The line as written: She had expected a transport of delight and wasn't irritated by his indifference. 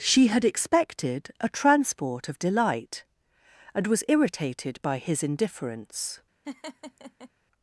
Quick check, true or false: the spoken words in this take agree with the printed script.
false